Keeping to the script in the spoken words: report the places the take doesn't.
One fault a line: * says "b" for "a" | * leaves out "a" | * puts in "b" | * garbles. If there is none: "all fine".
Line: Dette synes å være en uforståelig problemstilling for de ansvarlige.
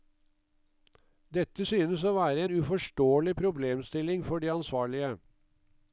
all fine